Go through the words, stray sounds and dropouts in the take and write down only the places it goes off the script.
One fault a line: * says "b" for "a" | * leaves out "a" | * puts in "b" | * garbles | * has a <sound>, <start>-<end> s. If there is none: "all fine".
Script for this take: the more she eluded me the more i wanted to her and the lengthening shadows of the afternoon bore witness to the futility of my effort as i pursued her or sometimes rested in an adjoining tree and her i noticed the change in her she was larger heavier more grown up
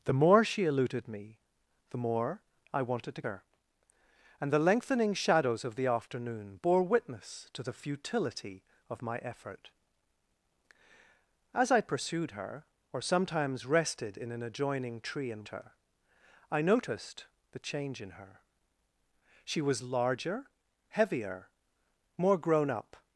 all fine